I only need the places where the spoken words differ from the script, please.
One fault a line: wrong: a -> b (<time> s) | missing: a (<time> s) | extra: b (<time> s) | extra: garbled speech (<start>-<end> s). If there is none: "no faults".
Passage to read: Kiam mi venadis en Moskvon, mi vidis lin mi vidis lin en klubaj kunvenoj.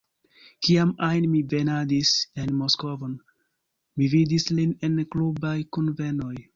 extra: ajn (1.1 s)
missing: mi vidis lin (4.8 s)